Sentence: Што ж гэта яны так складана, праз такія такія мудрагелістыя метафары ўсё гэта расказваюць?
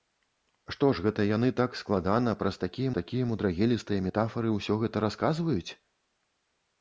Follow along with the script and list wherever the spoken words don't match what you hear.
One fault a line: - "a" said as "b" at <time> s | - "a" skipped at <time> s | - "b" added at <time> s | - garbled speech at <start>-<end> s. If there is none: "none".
none